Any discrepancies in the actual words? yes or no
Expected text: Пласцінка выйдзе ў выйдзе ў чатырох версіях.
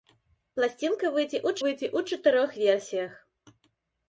no